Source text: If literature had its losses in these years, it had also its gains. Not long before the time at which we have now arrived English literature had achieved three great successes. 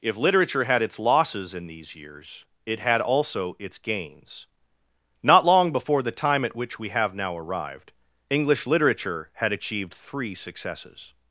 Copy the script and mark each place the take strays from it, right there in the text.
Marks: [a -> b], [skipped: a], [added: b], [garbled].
If literature had its losses in these years, it had also its gains. Not long before the time at which we have now arrived English literature had achieved three [skipped: great] successes.